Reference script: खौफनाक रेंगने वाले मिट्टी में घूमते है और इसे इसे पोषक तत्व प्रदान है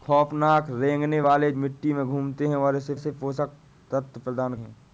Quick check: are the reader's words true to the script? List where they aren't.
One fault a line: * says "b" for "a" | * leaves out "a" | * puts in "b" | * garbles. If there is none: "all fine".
all fine